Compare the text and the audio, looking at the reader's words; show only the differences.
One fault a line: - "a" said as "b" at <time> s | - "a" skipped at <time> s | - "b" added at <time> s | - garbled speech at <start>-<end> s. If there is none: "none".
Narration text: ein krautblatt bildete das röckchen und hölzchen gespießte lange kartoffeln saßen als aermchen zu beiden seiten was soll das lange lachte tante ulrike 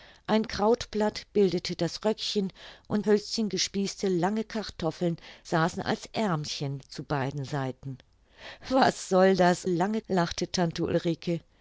none